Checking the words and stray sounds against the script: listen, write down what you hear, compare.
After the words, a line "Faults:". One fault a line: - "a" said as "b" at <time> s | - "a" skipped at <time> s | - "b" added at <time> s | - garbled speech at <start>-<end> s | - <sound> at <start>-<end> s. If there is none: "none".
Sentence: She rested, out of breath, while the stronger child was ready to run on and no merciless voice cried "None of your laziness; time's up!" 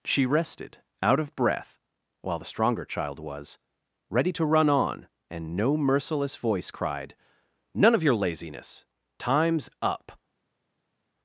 She rested, out of breath, while the stronger child was ready to run on and no merciless voice cried "None of your laziness; time's up!"
Faults:
none